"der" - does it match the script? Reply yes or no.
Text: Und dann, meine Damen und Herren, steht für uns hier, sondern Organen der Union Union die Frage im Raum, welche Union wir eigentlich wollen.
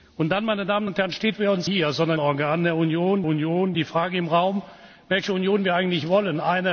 yes